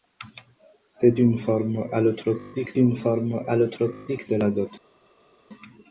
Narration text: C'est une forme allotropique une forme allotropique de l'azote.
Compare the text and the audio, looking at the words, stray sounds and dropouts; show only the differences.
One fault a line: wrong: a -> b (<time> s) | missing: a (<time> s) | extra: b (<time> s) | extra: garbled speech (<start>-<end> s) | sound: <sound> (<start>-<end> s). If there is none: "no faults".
no faults